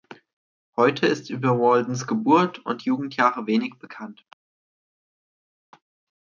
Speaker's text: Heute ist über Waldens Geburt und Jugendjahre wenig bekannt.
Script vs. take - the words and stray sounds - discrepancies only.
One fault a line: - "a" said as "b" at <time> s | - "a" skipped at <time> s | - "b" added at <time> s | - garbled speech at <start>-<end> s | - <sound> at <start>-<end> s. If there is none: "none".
none